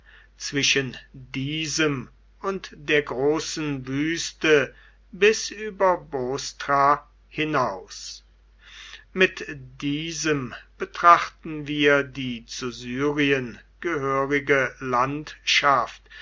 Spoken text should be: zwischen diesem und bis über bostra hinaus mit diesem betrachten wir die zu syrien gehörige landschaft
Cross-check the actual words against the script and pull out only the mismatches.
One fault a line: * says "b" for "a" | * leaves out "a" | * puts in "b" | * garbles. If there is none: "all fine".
* puts in "der großen wüste"